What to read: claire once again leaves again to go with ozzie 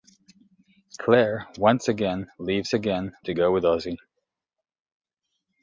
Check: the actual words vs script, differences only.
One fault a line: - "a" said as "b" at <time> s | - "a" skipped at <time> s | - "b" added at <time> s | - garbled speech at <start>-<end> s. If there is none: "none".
none